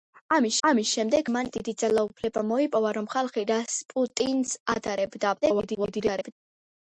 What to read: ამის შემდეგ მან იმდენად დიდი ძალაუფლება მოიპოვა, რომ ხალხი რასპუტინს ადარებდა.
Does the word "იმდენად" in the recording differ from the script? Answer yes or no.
yes